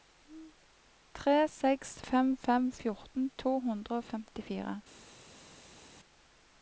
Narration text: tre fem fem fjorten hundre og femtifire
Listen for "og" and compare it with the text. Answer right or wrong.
right